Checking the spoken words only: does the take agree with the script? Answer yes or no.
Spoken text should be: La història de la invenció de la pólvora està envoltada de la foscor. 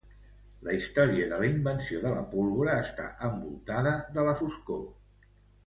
yes